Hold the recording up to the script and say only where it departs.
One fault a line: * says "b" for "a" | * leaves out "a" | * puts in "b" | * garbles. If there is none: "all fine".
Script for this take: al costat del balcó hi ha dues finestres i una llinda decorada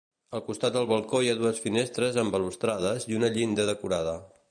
* puts in "amb balustrades"